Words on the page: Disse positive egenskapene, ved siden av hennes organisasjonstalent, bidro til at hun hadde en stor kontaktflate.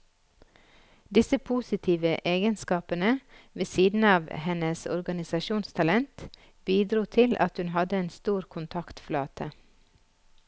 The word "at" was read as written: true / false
true